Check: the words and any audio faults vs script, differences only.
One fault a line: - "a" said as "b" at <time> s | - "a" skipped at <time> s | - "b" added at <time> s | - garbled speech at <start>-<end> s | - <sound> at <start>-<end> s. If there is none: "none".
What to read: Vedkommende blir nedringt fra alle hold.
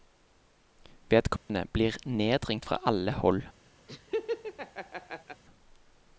- dropout at 1.4-1.5 s
- laugh at 3.9-5.4 s